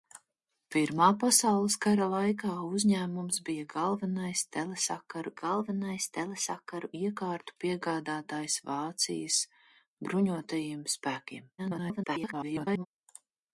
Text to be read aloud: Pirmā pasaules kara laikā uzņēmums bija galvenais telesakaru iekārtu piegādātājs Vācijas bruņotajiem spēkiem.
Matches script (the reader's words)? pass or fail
fail